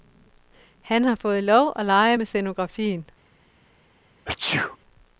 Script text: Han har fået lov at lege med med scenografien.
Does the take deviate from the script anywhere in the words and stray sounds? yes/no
yes